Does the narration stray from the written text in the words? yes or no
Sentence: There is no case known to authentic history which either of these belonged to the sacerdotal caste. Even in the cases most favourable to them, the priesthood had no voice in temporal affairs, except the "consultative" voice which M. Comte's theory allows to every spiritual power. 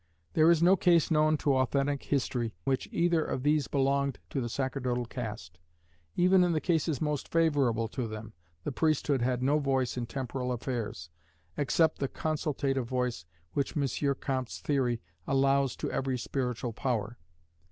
no